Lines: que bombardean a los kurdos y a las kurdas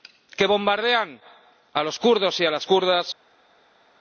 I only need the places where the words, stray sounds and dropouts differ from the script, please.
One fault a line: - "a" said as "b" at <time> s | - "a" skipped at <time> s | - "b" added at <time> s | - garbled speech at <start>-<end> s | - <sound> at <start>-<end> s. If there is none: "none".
none